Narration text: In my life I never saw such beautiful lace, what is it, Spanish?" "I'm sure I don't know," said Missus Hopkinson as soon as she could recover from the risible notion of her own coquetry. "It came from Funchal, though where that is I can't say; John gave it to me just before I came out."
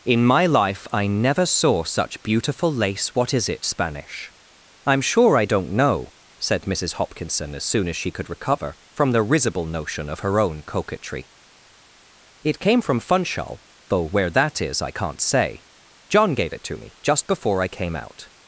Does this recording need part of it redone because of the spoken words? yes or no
no